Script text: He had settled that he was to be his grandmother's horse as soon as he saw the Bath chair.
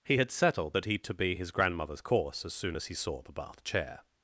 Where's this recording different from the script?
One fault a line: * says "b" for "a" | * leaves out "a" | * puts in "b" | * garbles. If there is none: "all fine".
* leaves out "was"
* says "course" for "horse"